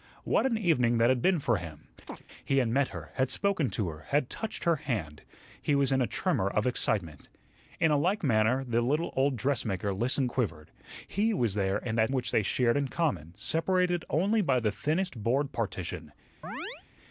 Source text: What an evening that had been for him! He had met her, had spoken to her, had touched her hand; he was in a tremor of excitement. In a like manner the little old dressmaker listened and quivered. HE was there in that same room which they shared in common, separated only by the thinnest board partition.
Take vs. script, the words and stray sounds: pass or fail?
fail